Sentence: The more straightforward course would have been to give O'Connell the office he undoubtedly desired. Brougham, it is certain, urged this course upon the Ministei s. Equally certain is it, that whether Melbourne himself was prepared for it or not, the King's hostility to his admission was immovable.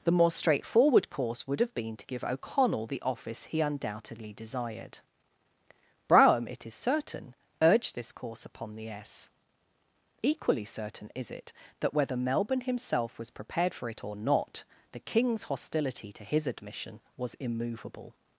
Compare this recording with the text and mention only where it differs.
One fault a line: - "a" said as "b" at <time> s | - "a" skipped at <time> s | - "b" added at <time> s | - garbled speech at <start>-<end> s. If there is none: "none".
- "Ministei" skipped at 8.9 s